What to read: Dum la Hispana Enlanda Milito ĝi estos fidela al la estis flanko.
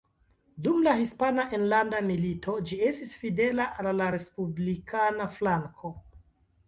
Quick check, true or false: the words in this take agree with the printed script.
false